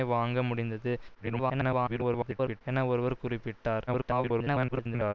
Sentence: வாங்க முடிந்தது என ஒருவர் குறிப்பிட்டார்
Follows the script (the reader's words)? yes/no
no